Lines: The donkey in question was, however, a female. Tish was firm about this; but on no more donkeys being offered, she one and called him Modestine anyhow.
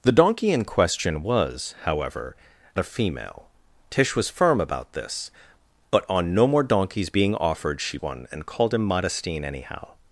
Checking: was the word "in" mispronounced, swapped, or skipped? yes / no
no